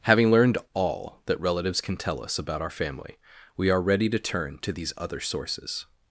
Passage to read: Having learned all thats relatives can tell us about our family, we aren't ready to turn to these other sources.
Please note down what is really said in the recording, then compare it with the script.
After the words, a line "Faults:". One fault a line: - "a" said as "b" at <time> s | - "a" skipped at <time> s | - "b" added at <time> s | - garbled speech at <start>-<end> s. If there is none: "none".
Having learned all that relatives can tell us about our family, we are ready to turn to these other sources.
Faults:
- "thats" said as "that" at 1.3 s
- "aren't" said as "are" at 3.7 s